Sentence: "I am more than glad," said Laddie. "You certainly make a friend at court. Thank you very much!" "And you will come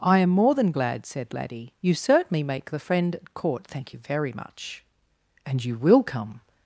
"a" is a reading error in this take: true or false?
true